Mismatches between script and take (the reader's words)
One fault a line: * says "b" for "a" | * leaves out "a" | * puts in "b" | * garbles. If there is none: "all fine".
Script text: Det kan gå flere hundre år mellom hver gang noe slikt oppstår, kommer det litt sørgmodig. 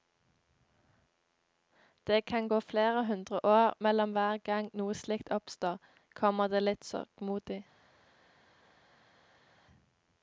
all fine